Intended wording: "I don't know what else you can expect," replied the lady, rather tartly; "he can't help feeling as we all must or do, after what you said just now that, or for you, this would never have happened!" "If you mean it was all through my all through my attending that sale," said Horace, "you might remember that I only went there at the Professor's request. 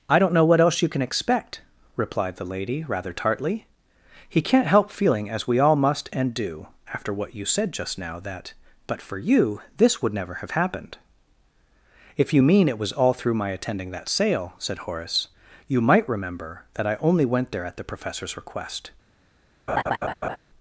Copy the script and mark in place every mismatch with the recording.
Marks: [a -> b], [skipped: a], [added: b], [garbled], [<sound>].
"I don't know what else you can expect," replied the lady, rather tartly; "he can't help feeling as we all must [or -> and] do, after what you said just now that, [or -> but] for you, this would never have happened!" "If you mean it was all through my [skipped: all through my] attending that sale," said Horace, "you might remember that I only went there at the Professor's request. [laugh]